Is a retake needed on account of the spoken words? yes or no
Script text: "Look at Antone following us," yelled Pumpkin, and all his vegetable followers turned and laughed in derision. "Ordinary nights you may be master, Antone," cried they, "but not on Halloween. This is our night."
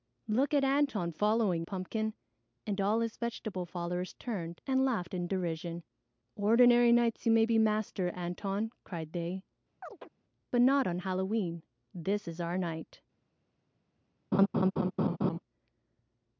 yes